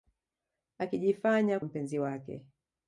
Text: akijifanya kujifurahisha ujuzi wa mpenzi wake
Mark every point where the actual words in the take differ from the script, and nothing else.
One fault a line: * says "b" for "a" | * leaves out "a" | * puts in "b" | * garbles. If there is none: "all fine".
* leaves out "kujifurahisha ujuzi wa"